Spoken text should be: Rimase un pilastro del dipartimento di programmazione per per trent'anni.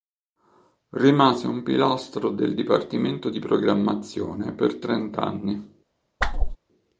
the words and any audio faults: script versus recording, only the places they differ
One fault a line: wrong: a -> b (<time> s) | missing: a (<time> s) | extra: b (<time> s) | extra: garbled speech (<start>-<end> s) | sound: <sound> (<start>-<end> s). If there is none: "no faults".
missing: per (4.8 s)
sound: whoosh (6.2-6.6 s)